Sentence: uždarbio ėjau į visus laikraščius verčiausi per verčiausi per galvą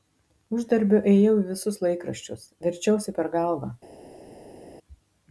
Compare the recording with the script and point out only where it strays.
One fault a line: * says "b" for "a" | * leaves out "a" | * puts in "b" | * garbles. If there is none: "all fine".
* leaves out "verčiausi per"